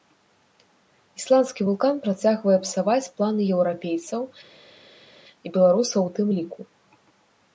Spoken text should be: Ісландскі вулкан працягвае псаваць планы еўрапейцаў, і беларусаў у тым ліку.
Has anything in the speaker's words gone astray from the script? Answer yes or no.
no